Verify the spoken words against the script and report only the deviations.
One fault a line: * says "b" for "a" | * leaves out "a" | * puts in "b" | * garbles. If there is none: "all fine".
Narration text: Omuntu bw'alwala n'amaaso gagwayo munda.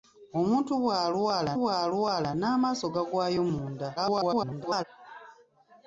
* puts in "bw'alwala"
* garbles